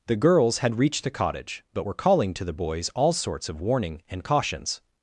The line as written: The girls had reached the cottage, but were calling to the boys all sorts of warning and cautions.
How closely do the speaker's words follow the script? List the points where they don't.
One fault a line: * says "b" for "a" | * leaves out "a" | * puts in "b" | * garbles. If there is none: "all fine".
all fine